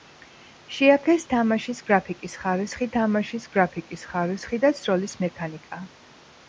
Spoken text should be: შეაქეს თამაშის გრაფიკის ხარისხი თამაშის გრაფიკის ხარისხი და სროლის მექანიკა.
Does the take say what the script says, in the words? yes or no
yes